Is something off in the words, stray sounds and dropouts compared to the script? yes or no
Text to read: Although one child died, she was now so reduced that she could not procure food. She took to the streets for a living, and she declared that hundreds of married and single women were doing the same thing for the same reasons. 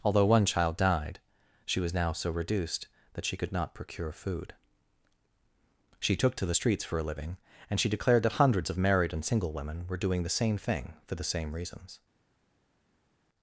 no